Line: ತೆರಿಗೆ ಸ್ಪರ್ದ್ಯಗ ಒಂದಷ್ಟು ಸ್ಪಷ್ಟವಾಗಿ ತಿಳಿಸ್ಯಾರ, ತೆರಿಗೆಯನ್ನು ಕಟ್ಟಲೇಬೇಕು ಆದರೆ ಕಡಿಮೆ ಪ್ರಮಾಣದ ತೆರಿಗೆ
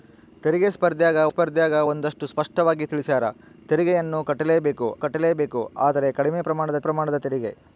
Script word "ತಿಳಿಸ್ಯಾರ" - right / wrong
right